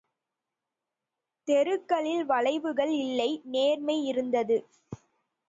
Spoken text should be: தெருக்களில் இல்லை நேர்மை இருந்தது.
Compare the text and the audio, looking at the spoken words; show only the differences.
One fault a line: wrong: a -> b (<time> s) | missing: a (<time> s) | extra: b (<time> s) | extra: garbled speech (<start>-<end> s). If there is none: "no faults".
extra: வளைவுகள் (2.2 s)